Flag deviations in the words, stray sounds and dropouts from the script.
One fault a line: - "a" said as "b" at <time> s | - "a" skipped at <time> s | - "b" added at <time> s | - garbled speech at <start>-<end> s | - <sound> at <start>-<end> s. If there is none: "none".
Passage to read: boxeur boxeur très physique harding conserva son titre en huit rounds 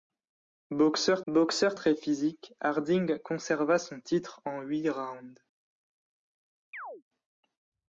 - chirp at 6.7-7.0 s